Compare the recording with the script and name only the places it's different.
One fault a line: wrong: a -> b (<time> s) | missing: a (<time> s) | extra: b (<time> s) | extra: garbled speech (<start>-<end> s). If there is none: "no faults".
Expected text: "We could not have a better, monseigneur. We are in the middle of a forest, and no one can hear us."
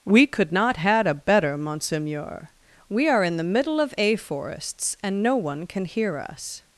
wrong: have -> had (0.8 s)
wrong: forest -> forests (4.1 s)